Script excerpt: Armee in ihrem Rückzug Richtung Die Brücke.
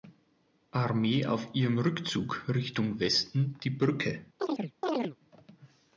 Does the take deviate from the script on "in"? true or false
true